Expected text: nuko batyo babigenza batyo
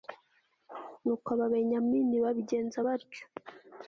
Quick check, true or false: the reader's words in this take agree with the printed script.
false